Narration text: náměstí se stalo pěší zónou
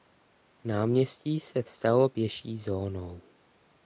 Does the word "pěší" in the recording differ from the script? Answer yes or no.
no